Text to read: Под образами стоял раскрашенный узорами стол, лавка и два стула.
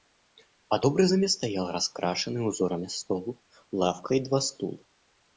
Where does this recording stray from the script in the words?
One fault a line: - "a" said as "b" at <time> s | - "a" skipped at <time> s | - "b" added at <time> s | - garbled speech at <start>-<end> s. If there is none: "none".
none